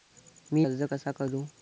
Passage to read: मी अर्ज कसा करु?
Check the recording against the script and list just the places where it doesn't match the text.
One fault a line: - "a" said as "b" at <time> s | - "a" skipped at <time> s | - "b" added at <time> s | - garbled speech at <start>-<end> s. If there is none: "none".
none